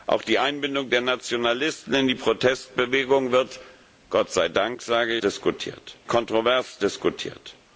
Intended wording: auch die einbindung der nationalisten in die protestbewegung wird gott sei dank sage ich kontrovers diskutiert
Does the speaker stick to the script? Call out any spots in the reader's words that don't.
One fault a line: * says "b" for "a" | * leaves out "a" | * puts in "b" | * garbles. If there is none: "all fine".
* says "diskutiert" for "ich"